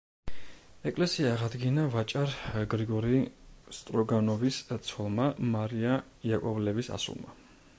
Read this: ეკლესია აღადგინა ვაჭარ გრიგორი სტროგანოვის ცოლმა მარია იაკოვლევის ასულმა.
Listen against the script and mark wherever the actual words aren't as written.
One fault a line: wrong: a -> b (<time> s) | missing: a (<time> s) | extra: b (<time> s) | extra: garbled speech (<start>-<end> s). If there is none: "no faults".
no faults